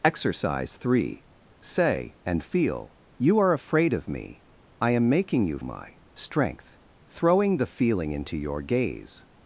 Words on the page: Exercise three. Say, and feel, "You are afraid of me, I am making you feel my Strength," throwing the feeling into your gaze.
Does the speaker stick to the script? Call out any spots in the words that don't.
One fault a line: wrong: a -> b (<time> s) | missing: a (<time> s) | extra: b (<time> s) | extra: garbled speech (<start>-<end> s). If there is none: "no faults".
missing: feel (5.6 s)